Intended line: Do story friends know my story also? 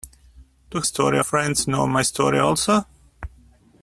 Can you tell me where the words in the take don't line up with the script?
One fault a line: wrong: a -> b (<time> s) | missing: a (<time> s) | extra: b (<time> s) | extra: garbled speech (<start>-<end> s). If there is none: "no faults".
no faults